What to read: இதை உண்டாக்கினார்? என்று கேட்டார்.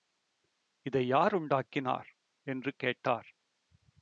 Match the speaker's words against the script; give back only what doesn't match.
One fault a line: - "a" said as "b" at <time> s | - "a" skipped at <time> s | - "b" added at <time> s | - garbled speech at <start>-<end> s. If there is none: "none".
- "யார்" added at 1.1 s